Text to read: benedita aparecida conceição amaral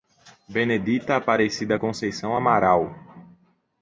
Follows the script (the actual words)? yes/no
yes